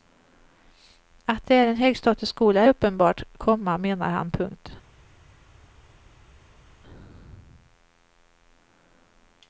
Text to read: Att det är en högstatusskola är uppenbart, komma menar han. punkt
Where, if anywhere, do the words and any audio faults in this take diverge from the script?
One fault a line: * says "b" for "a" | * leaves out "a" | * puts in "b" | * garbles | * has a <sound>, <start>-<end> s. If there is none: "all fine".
all fine